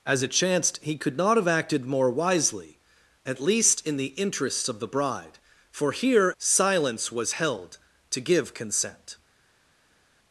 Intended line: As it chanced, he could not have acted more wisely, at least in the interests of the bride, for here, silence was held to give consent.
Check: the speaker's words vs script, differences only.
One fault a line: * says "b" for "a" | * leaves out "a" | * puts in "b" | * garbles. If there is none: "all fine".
all fine